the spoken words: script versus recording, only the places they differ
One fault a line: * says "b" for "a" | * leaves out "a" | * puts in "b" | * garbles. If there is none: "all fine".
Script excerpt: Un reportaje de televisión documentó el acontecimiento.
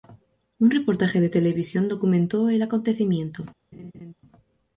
all fine